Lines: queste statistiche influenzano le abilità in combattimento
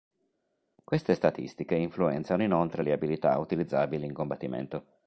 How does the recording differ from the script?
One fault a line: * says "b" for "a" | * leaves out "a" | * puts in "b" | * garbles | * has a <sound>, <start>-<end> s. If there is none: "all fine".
* puts in "inoltre"
* puts in "utilizzabili"